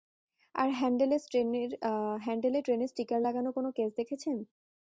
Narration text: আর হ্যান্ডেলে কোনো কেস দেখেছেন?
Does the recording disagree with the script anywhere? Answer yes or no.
yes